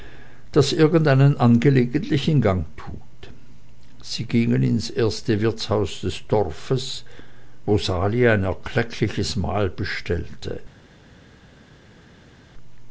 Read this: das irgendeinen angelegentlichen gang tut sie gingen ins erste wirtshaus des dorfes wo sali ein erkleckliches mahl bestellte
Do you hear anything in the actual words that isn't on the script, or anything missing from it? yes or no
no